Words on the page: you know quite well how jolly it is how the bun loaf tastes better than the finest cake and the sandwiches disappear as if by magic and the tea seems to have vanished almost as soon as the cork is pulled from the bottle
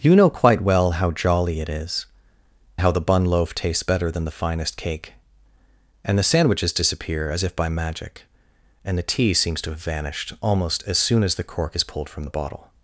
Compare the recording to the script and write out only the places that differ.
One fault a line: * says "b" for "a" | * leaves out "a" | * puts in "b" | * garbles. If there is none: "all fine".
all fine